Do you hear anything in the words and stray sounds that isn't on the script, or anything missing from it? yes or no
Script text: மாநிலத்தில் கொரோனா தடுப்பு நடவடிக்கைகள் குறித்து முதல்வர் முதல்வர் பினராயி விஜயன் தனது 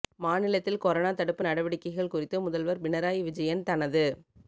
yes